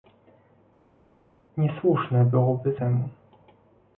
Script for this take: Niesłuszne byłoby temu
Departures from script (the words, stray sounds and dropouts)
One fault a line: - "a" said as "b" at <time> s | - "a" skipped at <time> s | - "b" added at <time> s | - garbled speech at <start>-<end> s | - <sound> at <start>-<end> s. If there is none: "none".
none